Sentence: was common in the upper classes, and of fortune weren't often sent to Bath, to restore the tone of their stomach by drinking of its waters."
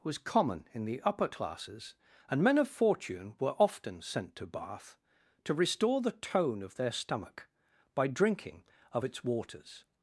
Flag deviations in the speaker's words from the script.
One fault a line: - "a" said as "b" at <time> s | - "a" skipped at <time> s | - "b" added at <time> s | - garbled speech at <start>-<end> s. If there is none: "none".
- "men" added at 2.4 s
- "weren't" said as "were" at 3.4 s